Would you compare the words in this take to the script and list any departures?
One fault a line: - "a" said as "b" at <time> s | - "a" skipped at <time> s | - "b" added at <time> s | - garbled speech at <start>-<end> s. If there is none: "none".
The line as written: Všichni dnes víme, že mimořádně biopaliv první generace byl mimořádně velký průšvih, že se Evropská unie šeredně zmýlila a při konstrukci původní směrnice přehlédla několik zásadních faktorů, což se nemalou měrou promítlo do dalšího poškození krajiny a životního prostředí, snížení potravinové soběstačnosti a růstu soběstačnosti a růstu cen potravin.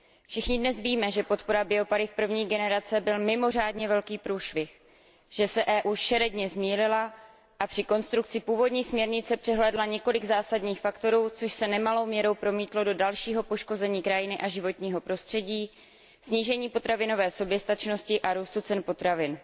- "mimořádně" said as "podpora" at 1.2 s
- "soběstačnosti a růstu" skipped at 18.6 s